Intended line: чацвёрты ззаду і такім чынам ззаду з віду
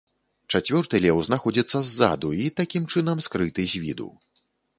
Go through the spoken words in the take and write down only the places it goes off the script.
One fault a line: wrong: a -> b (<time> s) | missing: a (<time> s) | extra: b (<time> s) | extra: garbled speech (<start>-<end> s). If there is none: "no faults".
extra: леў знаходзіцца (1.0 s)
wrong: ззаду -> скрыты (3.3 s)